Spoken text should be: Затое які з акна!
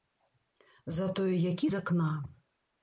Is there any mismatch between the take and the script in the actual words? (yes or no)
no